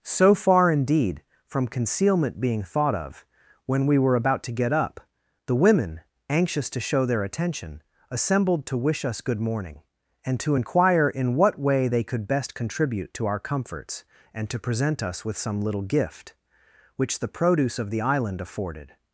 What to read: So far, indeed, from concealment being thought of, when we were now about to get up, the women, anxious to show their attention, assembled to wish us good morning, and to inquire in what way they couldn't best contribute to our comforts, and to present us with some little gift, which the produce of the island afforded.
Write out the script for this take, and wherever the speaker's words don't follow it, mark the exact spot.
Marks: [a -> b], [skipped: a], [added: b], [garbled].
So far, indeed, from concealment being thought of, when we were [skipped: now] about to get up, the women, anxious to show their attention, assembled to wish us good morning, and to inquire in what way they [couldn't -> could] best contribute to our comforts, and to present us with some little gift, which the produce of the island afforded.